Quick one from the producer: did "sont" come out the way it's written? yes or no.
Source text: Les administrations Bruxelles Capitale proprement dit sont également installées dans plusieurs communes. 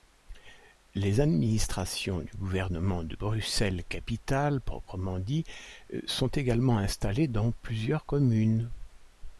yes